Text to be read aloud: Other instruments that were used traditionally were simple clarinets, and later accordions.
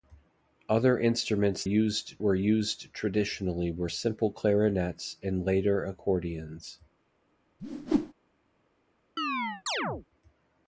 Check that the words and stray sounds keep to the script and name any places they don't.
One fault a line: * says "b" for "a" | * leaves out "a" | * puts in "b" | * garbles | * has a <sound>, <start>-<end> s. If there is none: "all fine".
* says "used" for "that"
* has a whoosh, 7.6-8.1 s
* has a chirp, 9.2-10.1 s